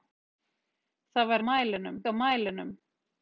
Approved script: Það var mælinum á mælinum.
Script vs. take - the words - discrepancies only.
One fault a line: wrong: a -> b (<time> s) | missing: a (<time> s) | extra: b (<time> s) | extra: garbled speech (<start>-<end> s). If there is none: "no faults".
no faults